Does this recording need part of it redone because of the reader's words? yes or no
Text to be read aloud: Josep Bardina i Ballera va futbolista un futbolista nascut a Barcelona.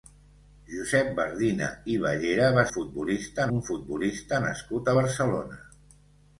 no